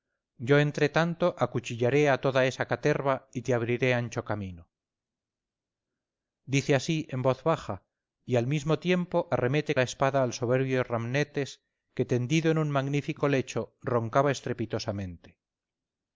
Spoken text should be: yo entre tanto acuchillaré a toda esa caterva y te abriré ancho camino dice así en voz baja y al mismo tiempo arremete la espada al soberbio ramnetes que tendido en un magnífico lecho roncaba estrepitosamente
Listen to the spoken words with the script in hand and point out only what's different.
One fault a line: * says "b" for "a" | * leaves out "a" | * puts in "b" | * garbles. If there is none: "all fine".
all fine